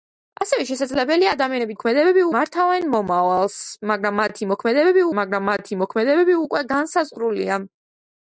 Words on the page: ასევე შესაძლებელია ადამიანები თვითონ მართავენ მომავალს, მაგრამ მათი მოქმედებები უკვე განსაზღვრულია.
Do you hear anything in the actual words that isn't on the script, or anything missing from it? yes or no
yes